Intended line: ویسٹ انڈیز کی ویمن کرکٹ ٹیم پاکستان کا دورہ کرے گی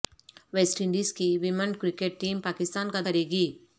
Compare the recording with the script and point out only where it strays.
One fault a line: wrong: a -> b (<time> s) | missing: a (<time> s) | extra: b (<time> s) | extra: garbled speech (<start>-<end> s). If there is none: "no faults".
missing: دورہ (3.0 s)